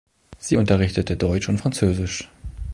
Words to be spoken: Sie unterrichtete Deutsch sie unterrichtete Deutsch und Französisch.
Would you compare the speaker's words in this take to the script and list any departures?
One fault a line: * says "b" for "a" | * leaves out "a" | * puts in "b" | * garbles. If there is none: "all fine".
* leaves out "sie unterrichtete Deutsch"